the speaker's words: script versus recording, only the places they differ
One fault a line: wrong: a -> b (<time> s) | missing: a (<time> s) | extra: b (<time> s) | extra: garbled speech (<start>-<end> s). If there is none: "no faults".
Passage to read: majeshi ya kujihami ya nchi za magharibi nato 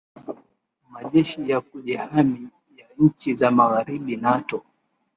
no faults